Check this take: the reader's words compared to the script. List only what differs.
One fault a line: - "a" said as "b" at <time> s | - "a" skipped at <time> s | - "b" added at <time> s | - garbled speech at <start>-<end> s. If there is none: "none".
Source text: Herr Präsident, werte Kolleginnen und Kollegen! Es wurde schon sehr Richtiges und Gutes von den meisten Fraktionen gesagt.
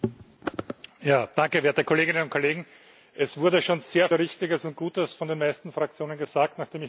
none